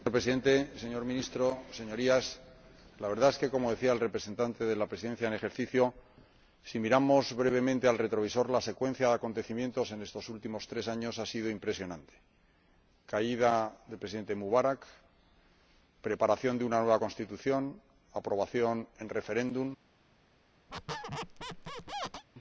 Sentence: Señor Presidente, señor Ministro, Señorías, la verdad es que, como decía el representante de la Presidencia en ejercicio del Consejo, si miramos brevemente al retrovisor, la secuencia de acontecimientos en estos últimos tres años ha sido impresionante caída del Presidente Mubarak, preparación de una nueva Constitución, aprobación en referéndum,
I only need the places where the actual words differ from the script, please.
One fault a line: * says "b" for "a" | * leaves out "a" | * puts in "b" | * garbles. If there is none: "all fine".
all fine